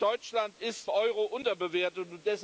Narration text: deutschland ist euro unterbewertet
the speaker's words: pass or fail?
pass